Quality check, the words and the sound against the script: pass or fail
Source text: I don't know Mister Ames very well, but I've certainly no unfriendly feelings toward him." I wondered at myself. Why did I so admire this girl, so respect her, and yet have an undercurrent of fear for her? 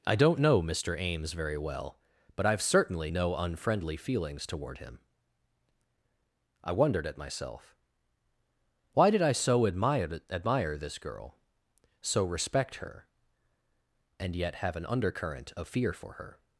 fail